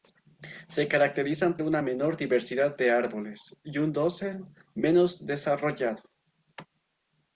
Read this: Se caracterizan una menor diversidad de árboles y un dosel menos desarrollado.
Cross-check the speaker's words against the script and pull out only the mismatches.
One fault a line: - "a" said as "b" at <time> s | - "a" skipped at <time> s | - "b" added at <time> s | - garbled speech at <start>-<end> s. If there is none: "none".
none